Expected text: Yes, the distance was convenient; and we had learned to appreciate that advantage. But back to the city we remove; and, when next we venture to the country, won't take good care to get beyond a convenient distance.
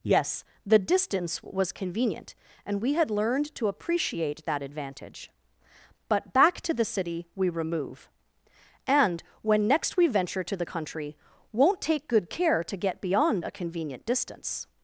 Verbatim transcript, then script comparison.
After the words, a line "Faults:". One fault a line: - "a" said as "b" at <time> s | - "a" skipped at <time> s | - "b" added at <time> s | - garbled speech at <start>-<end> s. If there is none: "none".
Yes, the distance was convenient; and we had learned to appreciate that advantage. But back to the city we remove; and, when next we venture to the country, won't take good care to get beyond a convenient distance.
Faults:
none